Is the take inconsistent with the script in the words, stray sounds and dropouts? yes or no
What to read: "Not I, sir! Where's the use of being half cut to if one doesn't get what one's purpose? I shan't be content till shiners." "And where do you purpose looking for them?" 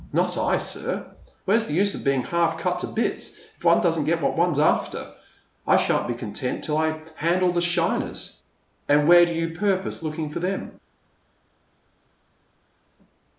yes